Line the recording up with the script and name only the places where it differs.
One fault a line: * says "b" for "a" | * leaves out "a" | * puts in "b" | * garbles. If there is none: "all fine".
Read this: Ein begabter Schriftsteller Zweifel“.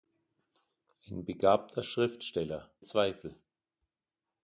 all fine